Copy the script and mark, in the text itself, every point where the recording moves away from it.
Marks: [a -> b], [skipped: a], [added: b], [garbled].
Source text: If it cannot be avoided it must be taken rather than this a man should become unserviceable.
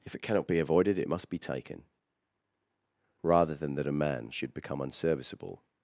If it cannot be avoided it must be taken rather than [this -> that] a man should become unserviceable.